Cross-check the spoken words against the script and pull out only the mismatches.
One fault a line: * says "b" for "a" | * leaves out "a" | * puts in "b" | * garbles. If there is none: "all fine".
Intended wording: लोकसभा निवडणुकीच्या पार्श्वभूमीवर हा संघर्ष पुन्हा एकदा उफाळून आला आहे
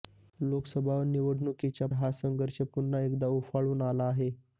* leaves out "पार्श्वभूमीवर"